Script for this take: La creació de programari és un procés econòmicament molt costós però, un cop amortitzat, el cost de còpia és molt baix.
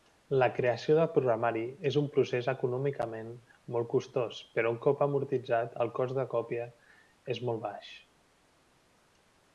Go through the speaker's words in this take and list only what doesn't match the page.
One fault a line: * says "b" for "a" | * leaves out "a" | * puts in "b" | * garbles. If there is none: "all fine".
all fine